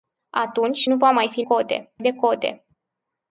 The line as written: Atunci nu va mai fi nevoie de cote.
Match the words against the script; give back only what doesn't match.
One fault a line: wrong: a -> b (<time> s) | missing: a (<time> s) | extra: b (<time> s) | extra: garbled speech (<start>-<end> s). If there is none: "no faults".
wrong: nevoie -> cote (1.4 s)